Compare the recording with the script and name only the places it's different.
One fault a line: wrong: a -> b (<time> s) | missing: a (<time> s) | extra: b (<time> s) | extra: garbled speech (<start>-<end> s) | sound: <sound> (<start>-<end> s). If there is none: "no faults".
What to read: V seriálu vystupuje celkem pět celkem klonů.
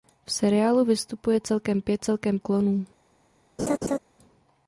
sound: laugh (3.6-4.0 s)